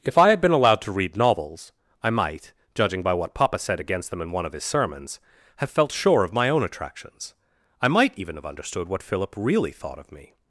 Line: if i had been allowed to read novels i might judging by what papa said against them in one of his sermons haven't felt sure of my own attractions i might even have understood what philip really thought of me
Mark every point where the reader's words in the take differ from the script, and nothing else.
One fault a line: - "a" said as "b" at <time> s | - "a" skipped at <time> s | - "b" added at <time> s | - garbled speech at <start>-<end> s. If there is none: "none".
- "haven't" said as "have" at 5.6 s